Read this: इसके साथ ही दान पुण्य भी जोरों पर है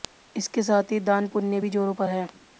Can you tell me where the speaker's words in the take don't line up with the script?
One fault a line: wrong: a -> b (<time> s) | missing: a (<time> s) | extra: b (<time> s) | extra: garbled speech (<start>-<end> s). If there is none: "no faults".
no faults